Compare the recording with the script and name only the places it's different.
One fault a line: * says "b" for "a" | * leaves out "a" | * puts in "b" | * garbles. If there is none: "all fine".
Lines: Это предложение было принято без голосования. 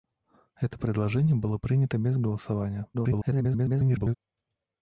* garbles